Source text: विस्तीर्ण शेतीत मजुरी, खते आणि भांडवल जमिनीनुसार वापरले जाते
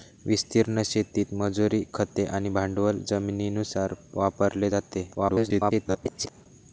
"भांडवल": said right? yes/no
yes